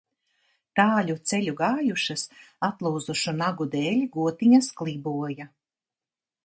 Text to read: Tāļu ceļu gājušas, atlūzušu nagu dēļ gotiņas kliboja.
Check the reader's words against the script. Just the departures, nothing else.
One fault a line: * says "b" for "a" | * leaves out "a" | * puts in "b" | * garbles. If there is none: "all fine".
all fine